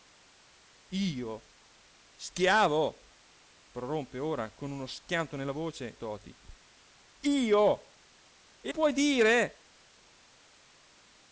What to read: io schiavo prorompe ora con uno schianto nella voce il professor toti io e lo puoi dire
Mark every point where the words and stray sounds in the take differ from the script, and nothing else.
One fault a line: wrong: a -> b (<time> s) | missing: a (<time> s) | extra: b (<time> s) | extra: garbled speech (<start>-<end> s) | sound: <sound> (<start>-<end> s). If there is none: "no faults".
missing: il professor (6.0 s)
missing: lo (8.7 s)